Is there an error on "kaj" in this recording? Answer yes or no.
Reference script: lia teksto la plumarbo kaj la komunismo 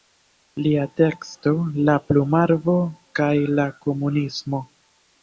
no